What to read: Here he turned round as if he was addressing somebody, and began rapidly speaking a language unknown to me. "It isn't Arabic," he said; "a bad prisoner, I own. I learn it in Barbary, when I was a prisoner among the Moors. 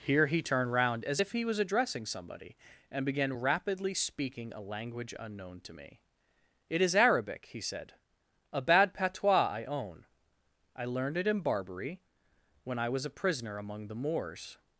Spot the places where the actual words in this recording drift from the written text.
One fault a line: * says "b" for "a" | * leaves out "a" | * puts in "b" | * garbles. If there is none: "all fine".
* says "is" for "isn't"
* says "patois" for "prisoner"
* says "learned" for "learn"